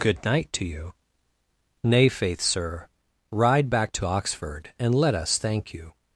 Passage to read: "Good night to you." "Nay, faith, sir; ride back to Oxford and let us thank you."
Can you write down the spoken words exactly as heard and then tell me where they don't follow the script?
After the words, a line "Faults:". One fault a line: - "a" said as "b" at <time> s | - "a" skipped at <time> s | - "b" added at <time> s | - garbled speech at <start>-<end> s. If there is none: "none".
"Good night to you." "Nay, faith, sir; ride back to Oxford and let us thank you."
Faults:
none